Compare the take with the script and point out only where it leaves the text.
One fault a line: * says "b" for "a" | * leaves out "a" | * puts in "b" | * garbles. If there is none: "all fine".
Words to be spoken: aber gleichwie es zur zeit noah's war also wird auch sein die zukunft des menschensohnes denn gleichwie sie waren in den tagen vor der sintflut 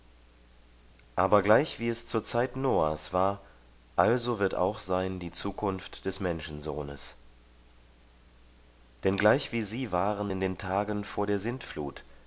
all fine